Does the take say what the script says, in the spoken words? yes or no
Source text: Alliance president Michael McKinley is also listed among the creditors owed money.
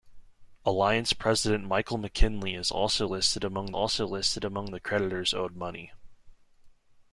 no